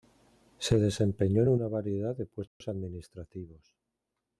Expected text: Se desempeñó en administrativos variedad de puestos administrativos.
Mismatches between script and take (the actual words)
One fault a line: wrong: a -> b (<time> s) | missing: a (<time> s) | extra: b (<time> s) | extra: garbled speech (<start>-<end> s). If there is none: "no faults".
wrong: administrativos -> una (1.5 s)